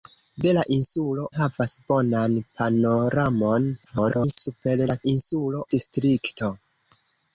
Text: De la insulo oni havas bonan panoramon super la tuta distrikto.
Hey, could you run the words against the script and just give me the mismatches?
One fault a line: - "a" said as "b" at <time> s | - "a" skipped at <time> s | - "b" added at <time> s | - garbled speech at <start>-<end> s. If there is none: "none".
- "oni" skipped at 1.2 s
- garbled speech at 3.8-4.4 s
- "tuta" said as "insulo" at 5.1 s